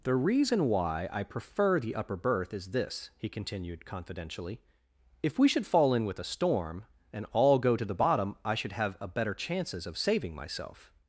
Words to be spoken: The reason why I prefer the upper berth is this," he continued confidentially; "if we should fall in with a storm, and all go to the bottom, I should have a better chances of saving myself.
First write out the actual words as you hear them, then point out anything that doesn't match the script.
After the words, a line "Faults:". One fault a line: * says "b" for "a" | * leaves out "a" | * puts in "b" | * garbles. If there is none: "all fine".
The reason why I prefer the upper berth is this," he continued confidentially; "if we should fall in with a storm, and all go to the bottom, I should have a better chances of saving myself.
Faults:
all fine